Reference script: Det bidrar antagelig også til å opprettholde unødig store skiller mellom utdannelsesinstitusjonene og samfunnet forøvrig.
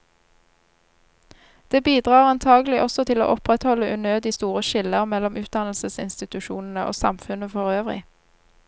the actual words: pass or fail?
pass